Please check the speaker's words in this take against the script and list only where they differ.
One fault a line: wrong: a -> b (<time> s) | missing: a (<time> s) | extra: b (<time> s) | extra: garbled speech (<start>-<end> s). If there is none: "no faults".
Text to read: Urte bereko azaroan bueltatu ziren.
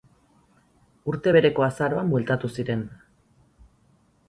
no faults